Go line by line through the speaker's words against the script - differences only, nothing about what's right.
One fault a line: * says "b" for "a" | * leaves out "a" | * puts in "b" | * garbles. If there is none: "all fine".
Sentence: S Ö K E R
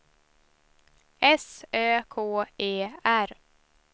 all fine